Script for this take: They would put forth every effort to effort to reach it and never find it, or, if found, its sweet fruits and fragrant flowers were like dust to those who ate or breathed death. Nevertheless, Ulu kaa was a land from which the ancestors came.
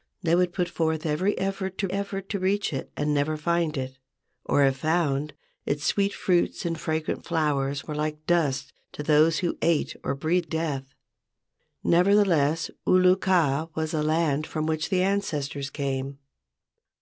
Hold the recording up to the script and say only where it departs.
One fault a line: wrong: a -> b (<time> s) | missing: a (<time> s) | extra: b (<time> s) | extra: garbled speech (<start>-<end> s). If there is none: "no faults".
no faults